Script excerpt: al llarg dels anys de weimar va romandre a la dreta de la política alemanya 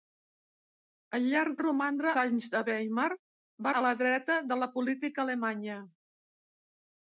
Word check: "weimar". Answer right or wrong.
right